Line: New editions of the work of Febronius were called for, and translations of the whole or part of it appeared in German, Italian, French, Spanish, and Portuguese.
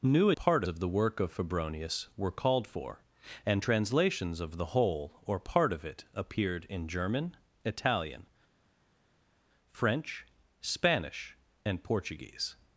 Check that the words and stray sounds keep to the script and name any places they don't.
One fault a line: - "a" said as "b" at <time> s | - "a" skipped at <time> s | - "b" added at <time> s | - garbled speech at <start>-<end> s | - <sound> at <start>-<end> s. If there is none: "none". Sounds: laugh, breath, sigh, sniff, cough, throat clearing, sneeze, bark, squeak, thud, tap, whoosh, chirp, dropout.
- "editions" said as "part" at 0.3 s